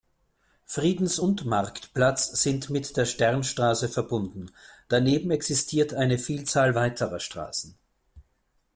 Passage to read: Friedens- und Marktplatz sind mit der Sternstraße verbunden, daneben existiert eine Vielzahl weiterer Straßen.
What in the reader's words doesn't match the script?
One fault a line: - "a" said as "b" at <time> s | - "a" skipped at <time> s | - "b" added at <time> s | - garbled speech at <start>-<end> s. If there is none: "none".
none